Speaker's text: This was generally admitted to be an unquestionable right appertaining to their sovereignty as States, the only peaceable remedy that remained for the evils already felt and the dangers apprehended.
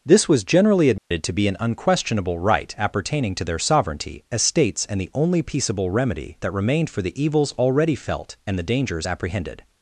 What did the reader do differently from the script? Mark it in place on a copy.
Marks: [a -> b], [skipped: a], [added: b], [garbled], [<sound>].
This was generally admitted [dropout] to be an unquestionable right appertaining to their sovereignty as States, [added: and] the only peaceable remedy that remained for the evils already felt and the dangers apprehended.